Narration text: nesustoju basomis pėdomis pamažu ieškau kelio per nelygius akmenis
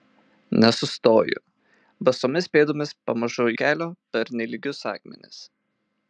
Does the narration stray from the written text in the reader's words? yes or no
yes